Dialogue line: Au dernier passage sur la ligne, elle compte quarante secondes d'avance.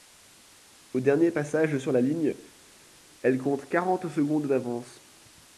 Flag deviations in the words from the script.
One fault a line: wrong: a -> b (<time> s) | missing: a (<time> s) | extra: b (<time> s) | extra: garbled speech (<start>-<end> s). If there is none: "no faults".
no faults